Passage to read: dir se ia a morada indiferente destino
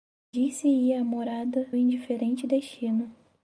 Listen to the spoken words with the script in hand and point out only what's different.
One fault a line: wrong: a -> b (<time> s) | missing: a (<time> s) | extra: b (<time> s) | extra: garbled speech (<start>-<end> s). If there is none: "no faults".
no faults